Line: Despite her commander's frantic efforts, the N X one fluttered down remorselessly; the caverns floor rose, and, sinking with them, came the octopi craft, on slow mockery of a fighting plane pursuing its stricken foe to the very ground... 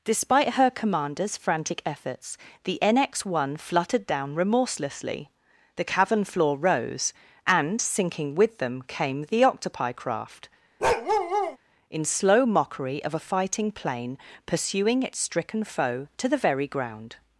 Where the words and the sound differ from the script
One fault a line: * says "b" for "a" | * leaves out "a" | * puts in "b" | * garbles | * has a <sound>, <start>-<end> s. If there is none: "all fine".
* says "cavern" for "caverns"
* has a bark, 10.8-11.6 s
* says "in" for "on"